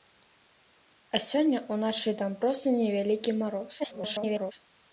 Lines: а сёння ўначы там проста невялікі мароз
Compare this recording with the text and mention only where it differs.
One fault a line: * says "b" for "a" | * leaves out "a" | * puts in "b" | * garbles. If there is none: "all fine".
* garbles